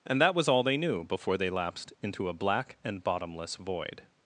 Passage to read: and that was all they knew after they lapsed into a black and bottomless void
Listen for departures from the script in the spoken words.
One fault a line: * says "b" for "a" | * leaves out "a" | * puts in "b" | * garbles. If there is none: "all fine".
* says "before" for "after"